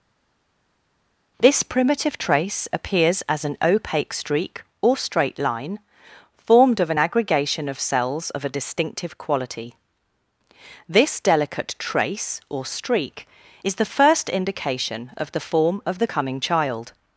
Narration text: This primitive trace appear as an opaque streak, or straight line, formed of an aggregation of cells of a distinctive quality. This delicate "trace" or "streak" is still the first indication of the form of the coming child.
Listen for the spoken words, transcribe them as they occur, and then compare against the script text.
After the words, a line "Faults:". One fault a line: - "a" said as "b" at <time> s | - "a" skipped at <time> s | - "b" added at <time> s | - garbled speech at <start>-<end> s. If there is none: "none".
This primitive trace appears as an opaque streak, or straight line, formed of an aggregation of cells of a distinctive quality. This delicate "trace" or "streak" is the first indication of the form of the coming child.
Faults:
- "appear" said as "appears" at 2.7 s
- "still" skipped at 13.8 s